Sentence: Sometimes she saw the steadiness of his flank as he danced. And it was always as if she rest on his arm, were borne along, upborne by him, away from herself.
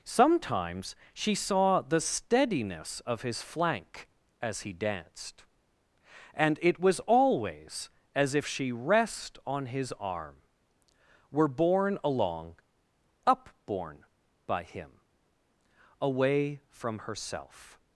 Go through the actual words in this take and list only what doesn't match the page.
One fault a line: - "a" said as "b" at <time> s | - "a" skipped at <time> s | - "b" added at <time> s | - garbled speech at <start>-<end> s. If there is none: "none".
none